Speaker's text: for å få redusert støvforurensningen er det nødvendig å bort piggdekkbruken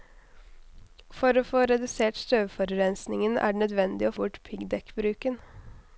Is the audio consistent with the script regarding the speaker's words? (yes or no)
yes